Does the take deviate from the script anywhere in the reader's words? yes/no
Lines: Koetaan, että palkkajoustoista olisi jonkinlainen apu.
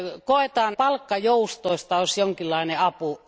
yes